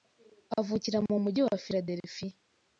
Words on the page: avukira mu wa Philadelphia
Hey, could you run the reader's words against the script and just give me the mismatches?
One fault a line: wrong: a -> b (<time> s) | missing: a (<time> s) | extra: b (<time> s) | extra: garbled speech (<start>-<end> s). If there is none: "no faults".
extra: mujyi (1.2 s)